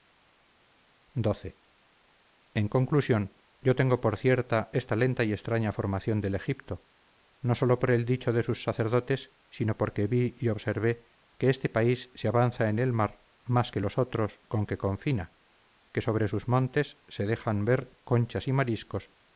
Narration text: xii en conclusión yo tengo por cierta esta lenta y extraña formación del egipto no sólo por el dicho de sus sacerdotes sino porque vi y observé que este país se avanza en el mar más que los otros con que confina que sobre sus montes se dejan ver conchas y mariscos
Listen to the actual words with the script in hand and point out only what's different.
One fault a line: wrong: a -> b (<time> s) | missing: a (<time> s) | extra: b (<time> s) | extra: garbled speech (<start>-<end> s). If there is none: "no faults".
no faults